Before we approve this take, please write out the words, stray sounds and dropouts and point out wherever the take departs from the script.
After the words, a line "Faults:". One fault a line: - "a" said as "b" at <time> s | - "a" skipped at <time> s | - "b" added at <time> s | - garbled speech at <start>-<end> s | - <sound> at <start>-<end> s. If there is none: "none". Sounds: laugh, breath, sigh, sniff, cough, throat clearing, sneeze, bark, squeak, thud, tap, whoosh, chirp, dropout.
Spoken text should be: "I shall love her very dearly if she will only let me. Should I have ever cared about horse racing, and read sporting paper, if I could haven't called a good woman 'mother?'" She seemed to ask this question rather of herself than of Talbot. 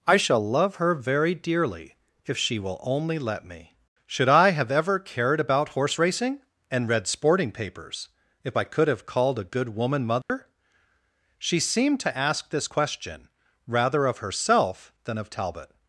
"I shall love her very dearly if she will only let me. Should I have ever cared about horse racing, and read sporting papers, if I could have called a good woman 'mother?'" She seemed to ask this question rather of herself than of Talbot.
Faults:
- "paper" said as "papers" at 7.5 s
- "haven't" said as "have" at 8.9 s
- dropout at 10.2-10.3 s